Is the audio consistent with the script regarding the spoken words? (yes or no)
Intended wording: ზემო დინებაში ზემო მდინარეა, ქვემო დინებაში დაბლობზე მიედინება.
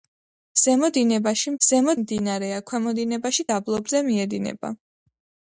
yes